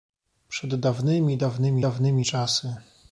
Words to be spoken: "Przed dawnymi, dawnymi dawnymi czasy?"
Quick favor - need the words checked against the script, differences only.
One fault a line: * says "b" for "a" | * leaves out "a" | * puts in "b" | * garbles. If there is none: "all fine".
all fine